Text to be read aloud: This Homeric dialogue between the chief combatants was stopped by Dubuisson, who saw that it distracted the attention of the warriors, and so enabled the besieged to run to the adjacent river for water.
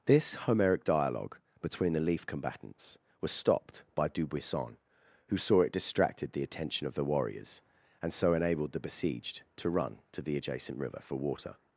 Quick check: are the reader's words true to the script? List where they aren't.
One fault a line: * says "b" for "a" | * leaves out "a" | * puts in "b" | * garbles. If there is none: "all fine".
* says "leaf" for "chief"
* leaves out "that"